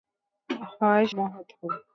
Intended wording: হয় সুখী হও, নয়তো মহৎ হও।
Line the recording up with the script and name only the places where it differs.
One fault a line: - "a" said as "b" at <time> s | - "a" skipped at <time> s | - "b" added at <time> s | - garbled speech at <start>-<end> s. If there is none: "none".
- "সুখী হও নয়তো" skipped at 1.1 s